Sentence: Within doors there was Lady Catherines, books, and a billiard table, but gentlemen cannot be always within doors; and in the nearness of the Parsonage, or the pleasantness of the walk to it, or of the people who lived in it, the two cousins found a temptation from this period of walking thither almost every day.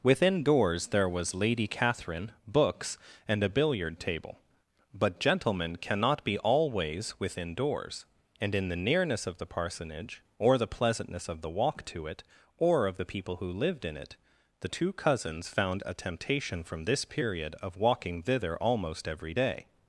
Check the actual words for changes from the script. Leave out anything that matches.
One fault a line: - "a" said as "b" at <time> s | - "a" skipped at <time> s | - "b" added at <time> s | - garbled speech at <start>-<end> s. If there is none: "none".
- "Catherines" said as "Catherine" at 1.7 s